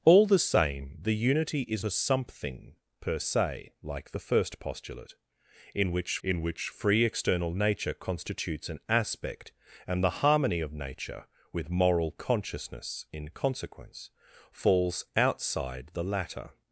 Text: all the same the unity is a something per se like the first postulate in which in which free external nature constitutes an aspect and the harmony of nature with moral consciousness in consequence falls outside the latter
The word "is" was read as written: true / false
true